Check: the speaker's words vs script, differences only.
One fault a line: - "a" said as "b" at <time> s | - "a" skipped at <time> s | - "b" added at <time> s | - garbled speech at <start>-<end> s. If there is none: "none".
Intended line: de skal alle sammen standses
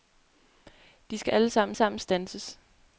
- "sammen" added at 1.7 s